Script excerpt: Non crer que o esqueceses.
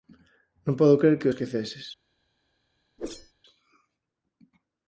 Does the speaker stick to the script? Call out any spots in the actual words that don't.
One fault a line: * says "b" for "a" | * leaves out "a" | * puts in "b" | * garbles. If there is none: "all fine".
* puts in "podo"